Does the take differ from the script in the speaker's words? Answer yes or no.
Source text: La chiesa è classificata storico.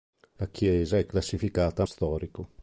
no